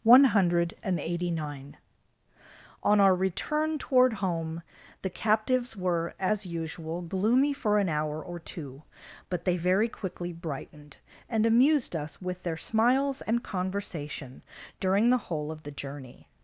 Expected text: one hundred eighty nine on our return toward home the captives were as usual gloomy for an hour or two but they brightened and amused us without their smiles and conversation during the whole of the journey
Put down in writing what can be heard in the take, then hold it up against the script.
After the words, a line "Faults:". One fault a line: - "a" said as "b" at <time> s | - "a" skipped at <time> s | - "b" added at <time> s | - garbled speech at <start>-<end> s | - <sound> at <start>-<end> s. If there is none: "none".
one hundred eighty nine on our return toward home the captives were as usual gloomy for an hour or two but they very quickly brightened and amused us with their smiles and conversation during the whole of the journey
Faults:
- "very quickly" added at 9.5 s
- "without" said as "with" at 12.2 s